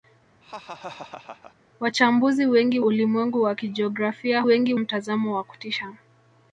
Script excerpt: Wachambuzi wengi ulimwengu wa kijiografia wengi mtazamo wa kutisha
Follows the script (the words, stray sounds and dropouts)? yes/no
no